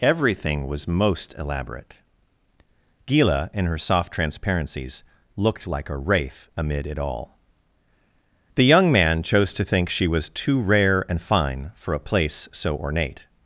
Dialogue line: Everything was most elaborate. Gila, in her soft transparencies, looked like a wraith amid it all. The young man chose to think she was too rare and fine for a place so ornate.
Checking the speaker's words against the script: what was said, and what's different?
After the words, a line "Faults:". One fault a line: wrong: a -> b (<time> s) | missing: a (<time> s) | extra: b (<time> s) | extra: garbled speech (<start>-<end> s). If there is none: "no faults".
Everything was most elaborate. Gila, in her soft transparencies, looked like a wraith amid it all. The young man chose to think she was too rare and fine for a place so ornate.
Faults:
no faults